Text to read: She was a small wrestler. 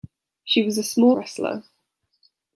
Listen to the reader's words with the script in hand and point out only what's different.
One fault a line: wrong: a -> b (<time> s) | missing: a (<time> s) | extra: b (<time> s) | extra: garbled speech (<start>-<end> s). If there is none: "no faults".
no faults